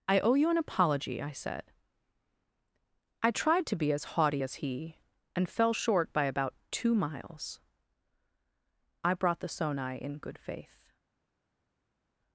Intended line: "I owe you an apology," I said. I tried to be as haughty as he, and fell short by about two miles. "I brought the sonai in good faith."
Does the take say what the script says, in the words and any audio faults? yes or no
yes